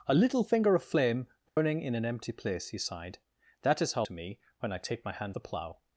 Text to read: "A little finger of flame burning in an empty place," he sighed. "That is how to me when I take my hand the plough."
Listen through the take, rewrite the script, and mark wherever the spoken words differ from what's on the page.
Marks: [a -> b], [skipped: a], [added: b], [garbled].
"A little finger of flame burning in an empty place," he sighed. "That is how to me when I take my hand the plough."